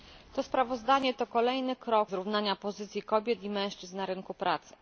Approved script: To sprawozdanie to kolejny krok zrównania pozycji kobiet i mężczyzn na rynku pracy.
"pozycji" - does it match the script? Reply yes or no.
yes